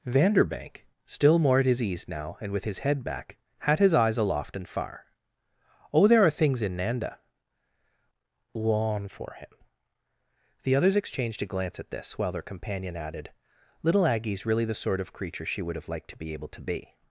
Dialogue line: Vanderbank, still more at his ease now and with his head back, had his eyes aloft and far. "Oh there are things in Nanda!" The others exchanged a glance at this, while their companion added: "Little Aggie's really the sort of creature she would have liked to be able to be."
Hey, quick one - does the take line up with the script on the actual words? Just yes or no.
no